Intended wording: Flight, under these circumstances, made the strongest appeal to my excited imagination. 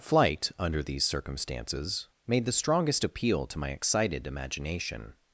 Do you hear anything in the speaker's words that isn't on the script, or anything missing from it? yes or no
no